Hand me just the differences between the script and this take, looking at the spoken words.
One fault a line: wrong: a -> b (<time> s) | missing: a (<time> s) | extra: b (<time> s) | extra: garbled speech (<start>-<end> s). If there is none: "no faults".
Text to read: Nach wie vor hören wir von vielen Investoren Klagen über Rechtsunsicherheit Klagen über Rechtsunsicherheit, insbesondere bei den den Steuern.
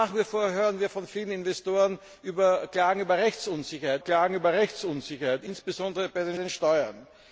no faults